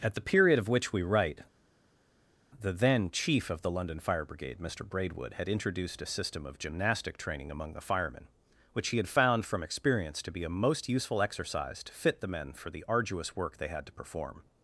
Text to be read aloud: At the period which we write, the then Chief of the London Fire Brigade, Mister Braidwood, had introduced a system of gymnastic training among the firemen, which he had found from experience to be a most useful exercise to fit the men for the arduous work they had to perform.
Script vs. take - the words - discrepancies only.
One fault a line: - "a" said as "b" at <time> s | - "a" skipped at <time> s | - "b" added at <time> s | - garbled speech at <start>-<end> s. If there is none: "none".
- "of" added at 0.6 s